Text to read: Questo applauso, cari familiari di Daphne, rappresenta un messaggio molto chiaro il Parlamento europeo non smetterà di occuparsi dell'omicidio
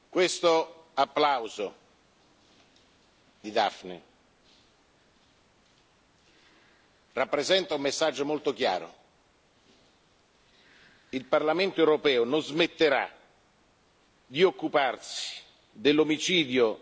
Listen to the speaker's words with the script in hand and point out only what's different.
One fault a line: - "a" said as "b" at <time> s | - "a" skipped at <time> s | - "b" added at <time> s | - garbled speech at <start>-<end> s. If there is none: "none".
- "cari familiari" skipped at 1.8 s